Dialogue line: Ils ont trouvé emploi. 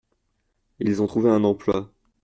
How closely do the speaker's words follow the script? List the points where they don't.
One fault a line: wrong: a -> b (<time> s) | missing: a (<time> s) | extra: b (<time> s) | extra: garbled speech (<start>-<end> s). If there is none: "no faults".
extra: un (1.3 s)